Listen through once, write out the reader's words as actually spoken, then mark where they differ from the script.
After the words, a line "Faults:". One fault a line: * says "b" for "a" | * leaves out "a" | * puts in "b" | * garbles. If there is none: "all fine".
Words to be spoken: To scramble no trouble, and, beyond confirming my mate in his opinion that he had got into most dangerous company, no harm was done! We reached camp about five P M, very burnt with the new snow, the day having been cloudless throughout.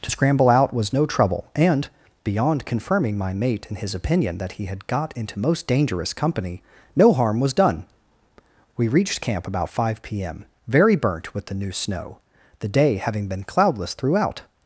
To scramble out was no trouble, and, beyond confirming my mate in his opinion that he had got into most dangerous company, no harm was done! We reached camp about five P M, very burnt with the new snow, the day having been cloudless throughout.
Faults:
* puts in "out was"